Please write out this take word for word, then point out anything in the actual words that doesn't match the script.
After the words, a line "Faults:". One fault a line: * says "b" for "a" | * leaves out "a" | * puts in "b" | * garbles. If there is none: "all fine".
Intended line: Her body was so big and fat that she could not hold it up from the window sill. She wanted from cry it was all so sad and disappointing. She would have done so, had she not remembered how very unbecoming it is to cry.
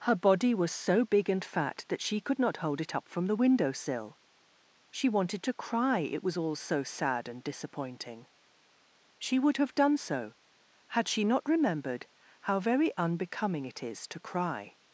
Her body was so big and fat that she could not hold it up from the window sill. She wanted to cry it was all so sad and disappointing. She would have done so, had she not remembered how very unbecoming it is to cry.
Faults:
* says "to" for "from"